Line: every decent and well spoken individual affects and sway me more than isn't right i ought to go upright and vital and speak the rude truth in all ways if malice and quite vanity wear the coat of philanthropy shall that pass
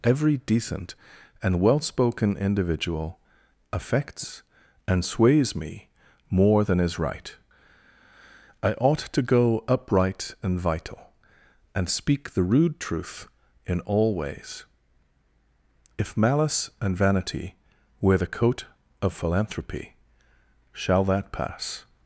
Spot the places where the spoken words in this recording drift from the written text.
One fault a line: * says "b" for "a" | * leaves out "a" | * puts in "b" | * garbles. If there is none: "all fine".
* says "sways" for "sway"
* says "is" for "isn't"
* leaves out "quite"